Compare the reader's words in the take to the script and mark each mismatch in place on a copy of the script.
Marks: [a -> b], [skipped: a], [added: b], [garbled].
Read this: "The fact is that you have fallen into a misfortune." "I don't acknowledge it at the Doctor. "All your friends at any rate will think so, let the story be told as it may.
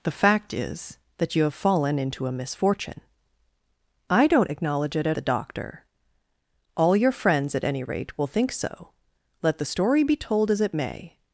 "The fact is that you have fallen into a misfortune." "I don't acknowledge it at the Doctor. "All your friends at any rate will think so, let the story be told as it may.